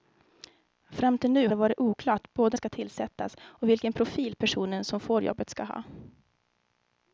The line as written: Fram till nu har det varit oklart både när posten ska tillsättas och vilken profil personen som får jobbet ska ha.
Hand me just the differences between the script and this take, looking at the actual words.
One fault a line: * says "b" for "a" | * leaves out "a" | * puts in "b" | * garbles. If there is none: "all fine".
* leaves out "har"
* leaves out "när posten"